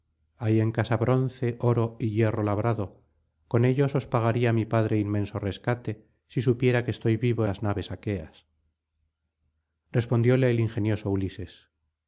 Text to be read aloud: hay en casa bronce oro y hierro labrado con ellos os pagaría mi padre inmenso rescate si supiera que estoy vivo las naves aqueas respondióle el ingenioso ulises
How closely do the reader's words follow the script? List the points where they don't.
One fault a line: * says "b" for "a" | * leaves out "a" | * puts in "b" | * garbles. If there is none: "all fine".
all fine